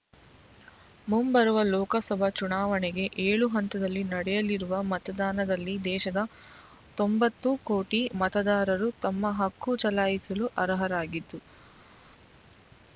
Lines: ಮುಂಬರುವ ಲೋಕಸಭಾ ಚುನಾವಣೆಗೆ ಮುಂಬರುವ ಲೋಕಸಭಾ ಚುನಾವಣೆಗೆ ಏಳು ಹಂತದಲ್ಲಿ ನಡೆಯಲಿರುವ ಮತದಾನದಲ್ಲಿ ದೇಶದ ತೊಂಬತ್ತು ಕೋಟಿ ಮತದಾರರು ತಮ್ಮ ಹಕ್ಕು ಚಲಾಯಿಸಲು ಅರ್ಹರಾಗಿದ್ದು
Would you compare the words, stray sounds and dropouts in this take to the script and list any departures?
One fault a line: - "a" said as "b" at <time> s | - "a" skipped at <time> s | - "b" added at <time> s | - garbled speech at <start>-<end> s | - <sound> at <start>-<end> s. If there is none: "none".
- "ಮುಂಬರುವ ಲೋಕಸಭಾ ಚುನಾವಣೆಗೆ" skipped at 3.0 s